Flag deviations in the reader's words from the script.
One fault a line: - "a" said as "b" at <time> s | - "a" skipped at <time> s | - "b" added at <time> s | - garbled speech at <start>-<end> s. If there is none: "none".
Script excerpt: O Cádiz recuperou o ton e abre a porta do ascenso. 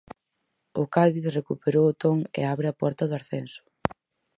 none